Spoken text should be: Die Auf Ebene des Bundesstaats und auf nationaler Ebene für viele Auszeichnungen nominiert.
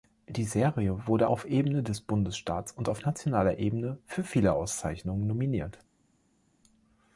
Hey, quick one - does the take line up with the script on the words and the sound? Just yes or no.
no